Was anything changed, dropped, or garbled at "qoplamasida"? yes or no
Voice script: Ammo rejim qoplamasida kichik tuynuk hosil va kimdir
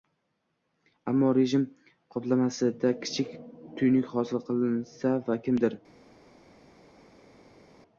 no